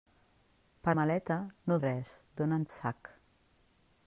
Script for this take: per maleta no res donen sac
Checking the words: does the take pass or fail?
pass